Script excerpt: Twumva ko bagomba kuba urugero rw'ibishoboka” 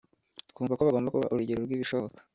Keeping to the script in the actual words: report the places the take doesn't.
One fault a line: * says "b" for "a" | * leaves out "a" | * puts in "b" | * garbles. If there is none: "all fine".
all fine